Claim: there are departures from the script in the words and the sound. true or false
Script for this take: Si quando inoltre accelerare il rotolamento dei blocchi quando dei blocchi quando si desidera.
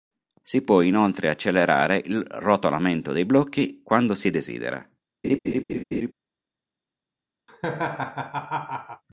true